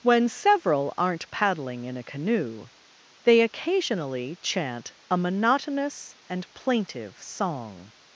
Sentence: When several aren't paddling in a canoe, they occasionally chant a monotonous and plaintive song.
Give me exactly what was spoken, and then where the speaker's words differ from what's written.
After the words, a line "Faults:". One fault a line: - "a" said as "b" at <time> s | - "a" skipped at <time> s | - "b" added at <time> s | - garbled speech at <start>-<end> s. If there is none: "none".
When several aren't paddling in a canoe, they occasionally chant a monotonous and plaintive song.
Faults:
none